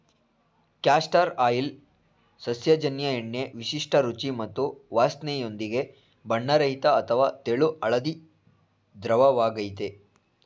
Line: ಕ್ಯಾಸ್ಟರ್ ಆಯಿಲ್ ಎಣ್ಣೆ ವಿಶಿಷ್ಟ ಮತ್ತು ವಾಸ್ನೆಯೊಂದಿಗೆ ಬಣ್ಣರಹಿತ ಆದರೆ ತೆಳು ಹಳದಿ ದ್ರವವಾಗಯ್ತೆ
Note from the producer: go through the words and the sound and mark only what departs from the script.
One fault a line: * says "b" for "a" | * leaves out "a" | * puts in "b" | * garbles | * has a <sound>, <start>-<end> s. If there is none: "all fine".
* puts in "ಸಸ್ಯಜನ್ಯ"
* puts in "ರುಚಿ"
* says "ಅಥವಾ" for "ಆದರೆ"